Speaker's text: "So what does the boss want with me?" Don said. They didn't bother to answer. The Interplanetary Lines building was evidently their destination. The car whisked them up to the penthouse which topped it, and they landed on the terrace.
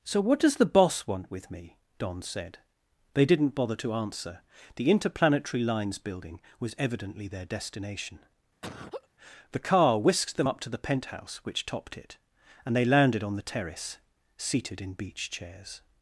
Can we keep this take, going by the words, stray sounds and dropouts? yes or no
no